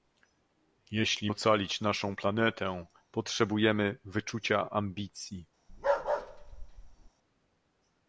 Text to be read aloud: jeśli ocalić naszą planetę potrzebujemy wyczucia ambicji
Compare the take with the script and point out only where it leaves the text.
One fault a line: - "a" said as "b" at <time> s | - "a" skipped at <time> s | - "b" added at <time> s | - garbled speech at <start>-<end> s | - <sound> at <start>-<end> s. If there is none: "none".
- bark at 5.7-7.1 s